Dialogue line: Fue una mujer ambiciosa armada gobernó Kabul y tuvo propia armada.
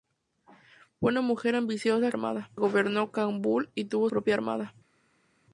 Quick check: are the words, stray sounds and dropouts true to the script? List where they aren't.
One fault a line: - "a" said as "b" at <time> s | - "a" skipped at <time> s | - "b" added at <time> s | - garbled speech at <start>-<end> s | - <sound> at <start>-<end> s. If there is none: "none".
none